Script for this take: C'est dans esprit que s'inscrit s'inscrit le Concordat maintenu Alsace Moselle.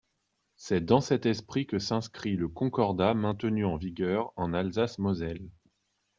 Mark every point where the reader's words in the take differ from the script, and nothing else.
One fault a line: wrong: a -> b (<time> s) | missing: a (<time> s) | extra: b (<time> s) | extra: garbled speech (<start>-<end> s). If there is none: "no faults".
extra: cet (1.0 s)
missing: s'inscrit (2.4 s)
extra: en vigueur en (3.6 s)